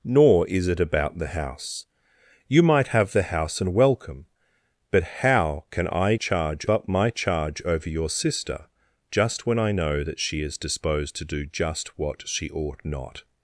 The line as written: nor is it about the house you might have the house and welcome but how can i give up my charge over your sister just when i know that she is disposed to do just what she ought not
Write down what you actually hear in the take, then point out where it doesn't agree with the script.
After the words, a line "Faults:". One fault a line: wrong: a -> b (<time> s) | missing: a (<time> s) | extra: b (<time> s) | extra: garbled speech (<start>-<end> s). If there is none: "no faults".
nor is it about the house you might have the house and welcome but how can i charge up my charge over your sister just when i know that she is disposed to do just what she ought not
Faults:
wrong: give -> charge (6.1 s)